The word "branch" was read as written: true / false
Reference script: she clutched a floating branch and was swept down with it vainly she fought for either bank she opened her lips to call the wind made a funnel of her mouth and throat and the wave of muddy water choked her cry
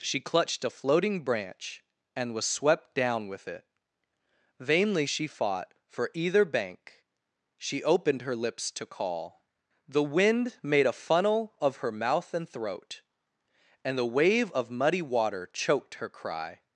true